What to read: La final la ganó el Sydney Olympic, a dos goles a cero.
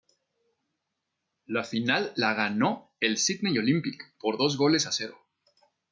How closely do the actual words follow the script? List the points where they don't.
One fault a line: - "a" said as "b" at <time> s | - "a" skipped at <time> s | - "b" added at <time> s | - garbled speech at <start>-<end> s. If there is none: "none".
- "a" said as "por" at 4.2 s